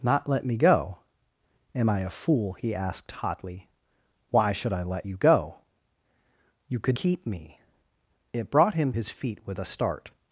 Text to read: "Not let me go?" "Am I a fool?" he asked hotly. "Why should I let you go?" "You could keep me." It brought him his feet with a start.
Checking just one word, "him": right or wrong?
right